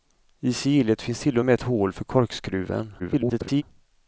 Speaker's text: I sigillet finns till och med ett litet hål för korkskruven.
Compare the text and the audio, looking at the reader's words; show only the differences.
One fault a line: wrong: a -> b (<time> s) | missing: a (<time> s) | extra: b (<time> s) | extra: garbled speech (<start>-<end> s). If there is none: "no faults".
missing: litet (1.6 s)
extra: garbled speech (3.0-3.6 s)